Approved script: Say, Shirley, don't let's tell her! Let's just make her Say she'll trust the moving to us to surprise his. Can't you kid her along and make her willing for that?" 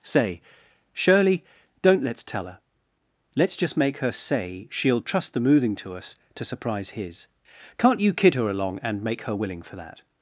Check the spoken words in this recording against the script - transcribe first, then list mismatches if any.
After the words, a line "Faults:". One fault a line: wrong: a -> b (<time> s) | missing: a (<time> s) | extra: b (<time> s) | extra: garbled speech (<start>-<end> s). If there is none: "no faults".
Say, Shirley, don't let's tell her! Let's just make her Say she'll trust the moving to us to surprise his. Can't you kid her along and make her willing for that?"
Faults:
no faults